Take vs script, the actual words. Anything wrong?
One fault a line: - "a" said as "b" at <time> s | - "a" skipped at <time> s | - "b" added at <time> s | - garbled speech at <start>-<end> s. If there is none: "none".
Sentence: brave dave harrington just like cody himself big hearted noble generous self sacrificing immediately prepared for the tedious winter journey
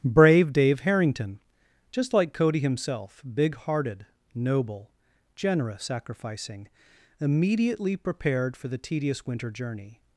- "self" skipped at 5.8 s